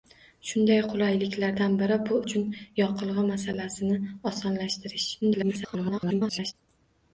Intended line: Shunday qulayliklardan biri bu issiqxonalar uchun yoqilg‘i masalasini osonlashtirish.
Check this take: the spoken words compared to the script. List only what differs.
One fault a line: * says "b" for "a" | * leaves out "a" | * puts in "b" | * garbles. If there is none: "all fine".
* leaves out "issiqxonalar"
* garbles